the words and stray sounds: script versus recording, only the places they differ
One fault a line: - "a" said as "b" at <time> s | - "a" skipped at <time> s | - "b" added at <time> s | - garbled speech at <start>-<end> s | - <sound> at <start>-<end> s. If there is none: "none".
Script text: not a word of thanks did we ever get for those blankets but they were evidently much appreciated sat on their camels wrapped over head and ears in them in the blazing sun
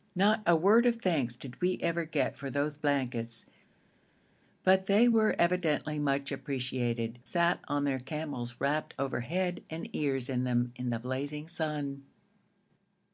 none